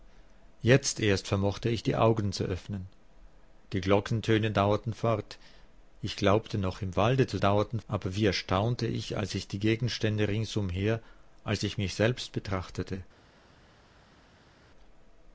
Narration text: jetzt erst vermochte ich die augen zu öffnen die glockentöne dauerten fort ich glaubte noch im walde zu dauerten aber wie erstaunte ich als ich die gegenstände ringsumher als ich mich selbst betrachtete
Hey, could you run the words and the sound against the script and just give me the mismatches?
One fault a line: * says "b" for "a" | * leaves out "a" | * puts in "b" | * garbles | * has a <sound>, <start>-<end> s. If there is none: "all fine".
all fine